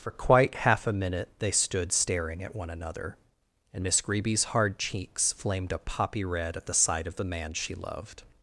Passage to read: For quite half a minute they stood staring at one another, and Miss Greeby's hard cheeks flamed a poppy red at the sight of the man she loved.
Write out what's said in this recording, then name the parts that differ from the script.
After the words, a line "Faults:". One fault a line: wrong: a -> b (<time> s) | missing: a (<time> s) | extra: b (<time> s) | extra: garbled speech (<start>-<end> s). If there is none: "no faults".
For quite half a minute they stood staring at one another, and Miss Greeby's hard cheeks flamed a poppy red at the sight of the man she loved.
Faults:
no faults